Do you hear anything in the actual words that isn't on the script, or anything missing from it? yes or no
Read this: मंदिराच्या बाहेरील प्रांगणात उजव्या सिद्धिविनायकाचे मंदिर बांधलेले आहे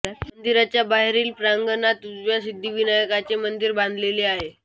no